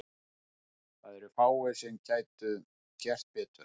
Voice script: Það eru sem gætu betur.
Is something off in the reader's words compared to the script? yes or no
yes